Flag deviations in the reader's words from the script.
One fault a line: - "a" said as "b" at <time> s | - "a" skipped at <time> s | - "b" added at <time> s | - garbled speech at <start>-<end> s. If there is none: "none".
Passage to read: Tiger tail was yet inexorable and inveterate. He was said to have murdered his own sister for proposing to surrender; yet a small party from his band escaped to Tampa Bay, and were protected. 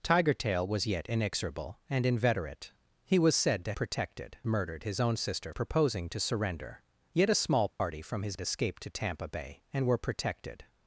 - "have" said as "protected" at 3.7 s
- "for" skipped at 5.5 s
- "band" skipped at 8.4 s